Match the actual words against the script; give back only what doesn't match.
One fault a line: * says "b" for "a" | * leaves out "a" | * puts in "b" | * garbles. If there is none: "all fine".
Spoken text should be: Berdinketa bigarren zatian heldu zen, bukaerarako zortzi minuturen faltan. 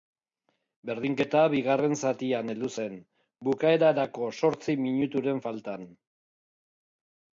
all fine